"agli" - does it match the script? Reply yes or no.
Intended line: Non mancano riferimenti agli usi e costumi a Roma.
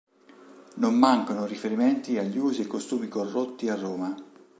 yes